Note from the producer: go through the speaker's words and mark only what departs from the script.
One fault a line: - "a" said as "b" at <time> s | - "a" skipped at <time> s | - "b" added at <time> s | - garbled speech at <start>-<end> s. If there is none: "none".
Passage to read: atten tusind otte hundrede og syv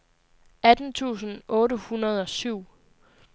none